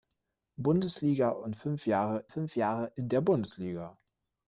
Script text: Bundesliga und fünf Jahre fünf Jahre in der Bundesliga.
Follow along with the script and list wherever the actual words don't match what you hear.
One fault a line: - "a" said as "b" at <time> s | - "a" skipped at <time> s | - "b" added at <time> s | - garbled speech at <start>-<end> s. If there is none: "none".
none